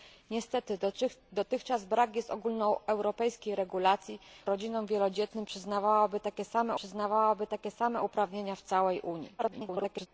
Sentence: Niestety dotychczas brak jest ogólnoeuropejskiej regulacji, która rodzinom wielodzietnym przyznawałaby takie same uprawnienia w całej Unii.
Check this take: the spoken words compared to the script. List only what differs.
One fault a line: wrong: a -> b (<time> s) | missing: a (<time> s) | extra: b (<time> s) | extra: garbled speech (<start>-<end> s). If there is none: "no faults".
missing: która (4.2 s)
extra: przyznawałaby takie same (6.7 s)
extra: garbled speech (9.4-10.1 s)